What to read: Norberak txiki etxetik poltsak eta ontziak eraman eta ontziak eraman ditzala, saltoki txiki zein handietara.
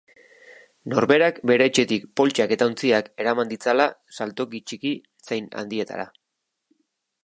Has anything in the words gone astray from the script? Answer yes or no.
yes